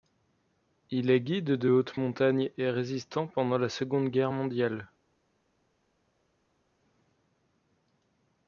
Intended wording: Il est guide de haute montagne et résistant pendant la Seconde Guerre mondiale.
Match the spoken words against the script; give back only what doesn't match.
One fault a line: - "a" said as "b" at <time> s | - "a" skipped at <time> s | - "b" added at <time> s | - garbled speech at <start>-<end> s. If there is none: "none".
none